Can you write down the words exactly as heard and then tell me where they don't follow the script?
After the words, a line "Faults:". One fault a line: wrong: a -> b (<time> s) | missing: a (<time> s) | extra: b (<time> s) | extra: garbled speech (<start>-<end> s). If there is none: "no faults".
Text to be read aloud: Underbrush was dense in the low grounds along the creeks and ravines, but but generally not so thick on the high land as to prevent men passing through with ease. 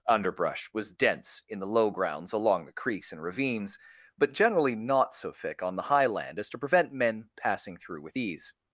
Underbrush was dense in the low grounds along the creeks and ravines, but generally not so thick on the high land as to prevent men passing through with ease.
Faults:
missing: but (4.3 s)